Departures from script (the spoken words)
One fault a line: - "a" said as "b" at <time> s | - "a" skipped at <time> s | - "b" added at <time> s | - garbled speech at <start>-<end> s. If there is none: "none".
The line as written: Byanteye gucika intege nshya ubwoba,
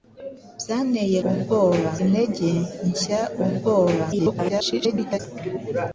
- "gucika" said as "ubwoba" at 1.3 s
- garbled speech at 4.1-5.2 s